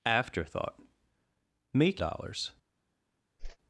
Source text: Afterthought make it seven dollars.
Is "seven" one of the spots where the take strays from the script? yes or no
yes